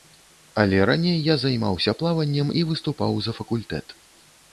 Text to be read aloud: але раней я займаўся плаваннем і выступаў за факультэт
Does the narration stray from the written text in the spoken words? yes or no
no